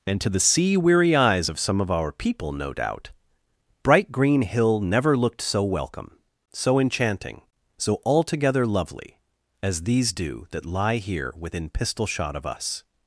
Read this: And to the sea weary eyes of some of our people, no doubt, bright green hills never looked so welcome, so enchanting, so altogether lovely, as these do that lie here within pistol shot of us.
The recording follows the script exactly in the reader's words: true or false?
false